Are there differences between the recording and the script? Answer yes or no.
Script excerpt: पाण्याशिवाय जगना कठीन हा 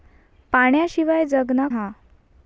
yes